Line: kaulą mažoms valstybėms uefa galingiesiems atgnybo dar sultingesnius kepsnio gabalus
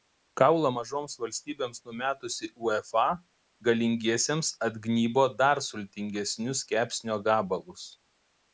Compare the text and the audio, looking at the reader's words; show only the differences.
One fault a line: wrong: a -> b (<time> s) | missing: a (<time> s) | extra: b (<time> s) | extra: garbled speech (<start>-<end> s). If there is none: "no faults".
extra: numetusi (1.9 s)